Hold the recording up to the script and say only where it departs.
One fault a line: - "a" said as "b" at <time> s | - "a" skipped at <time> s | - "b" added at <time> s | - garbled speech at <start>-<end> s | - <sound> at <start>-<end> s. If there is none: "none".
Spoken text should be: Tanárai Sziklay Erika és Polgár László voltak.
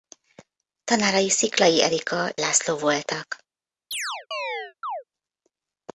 - "és Polgár" skipped at 2.3 s
- chirp at 3.9-5.0 s